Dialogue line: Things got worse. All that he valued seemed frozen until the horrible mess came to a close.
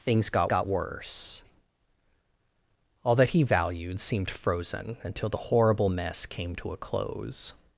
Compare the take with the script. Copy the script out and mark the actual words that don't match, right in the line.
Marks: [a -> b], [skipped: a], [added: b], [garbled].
Things got [added: got] worse. All that he valued seemed frozen until the horrible mess came to a close.